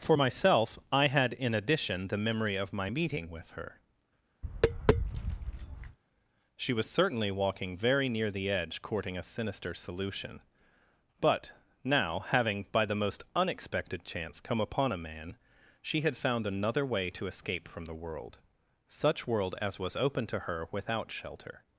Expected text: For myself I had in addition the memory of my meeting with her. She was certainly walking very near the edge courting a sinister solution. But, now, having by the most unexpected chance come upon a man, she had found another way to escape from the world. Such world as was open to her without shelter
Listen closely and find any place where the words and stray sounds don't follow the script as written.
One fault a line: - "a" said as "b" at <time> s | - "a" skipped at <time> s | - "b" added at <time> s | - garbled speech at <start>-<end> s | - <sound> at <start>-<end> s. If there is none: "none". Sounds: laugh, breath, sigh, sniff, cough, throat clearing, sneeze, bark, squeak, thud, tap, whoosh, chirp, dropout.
- tap at 4.4-6.0 s